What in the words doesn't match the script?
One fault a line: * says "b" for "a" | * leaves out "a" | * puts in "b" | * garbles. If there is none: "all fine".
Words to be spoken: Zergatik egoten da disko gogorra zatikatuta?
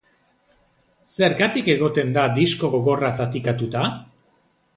all fine